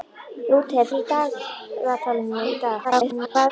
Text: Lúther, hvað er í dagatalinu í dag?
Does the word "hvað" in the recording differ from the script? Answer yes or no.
yes